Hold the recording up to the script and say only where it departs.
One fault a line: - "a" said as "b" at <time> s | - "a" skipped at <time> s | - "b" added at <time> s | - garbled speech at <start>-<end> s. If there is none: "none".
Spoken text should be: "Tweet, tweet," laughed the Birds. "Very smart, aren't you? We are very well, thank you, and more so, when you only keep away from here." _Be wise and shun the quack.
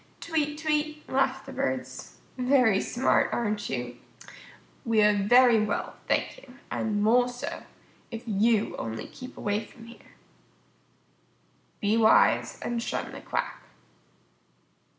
- "when" said as "if" at 8.1 s